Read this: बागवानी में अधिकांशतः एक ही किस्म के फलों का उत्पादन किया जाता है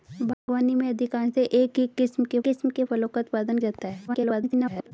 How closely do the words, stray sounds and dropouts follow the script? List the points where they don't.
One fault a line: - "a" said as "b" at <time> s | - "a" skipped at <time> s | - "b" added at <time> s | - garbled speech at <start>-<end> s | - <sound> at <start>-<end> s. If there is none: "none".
- dropout at 0.3-0.5 s
- "किस्म के" added at 2.4 s
- "किया" skipped at 3.6 s
- garbled speech at 4.1-4.9 s